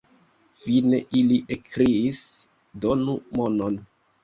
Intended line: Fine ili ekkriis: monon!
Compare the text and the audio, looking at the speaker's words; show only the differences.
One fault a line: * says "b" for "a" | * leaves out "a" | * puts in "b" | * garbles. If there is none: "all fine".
* puts in "donu"